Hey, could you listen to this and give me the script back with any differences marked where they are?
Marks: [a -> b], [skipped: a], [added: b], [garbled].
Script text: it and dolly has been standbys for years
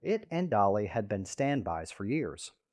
it and dolly [has -> had] been standbys for years